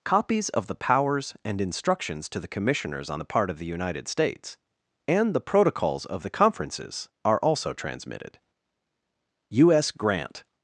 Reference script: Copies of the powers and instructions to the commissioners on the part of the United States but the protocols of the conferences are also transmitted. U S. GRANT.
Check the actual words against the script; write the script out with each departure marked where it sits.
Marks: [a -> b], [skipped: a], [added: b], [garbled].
Copies of the powers and instructions to the commissioners on the part of the United States [but -> and] the protocols of the conferences are also transmitted. U S. GRANT.